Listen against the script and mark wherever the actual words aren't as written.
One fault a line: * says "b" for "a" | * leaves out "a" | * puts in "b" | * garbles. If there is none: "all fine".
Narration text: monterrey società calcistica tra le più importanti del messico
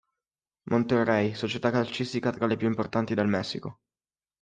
all fine